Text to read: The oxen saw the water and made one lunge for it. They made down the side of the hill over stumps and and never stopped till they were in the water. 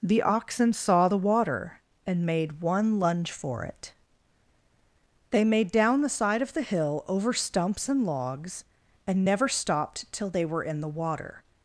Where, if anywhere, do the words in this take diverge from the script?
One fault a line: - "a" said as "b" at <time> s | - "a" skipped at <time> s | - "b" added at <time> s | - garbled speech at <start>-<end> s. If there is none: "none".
- "logs" added at 8.1 s